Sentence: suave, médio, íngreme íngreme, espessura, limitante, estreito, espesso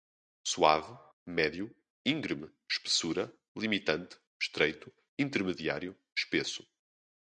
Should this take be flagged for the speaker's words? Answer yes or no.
yes